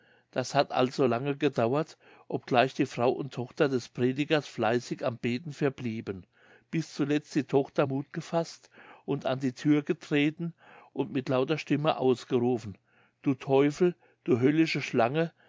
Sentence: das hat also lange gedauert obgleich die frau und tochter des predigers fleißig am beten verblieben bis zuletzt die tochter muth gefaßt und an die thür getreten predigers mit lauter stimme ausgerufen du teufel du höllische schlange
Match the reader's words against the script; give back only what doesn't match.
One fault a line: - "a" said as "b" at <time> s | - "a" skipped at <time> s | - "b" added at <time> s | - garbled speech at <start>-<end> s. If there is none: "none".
- "predigers" said as "und" at 10.9 s